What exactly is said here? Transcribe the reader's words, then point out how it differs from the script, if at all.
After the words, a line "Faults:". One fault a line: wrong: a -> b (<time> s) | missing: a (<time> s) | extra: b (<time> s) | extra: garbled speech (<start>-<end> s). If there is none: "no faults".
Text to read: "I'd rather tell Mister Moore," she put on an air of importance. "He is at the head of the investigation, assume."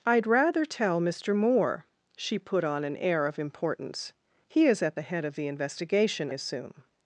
"I'd rather tell Mister Moore," she put on an air of importance. "He is at the head of the investigation, assume."
Faults:
no faults